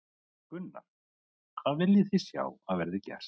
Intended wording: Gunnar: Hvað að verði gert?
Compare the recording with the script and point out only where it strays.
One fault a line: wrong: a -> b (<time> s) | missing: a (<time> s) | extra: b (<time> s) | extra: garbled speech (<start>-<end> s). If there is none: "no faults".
extra: viljið þið sjá (1.8 s)